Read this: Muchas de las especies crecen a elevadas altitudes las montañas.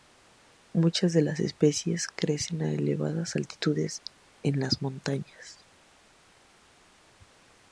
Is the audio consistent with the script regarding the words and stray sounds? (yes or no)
no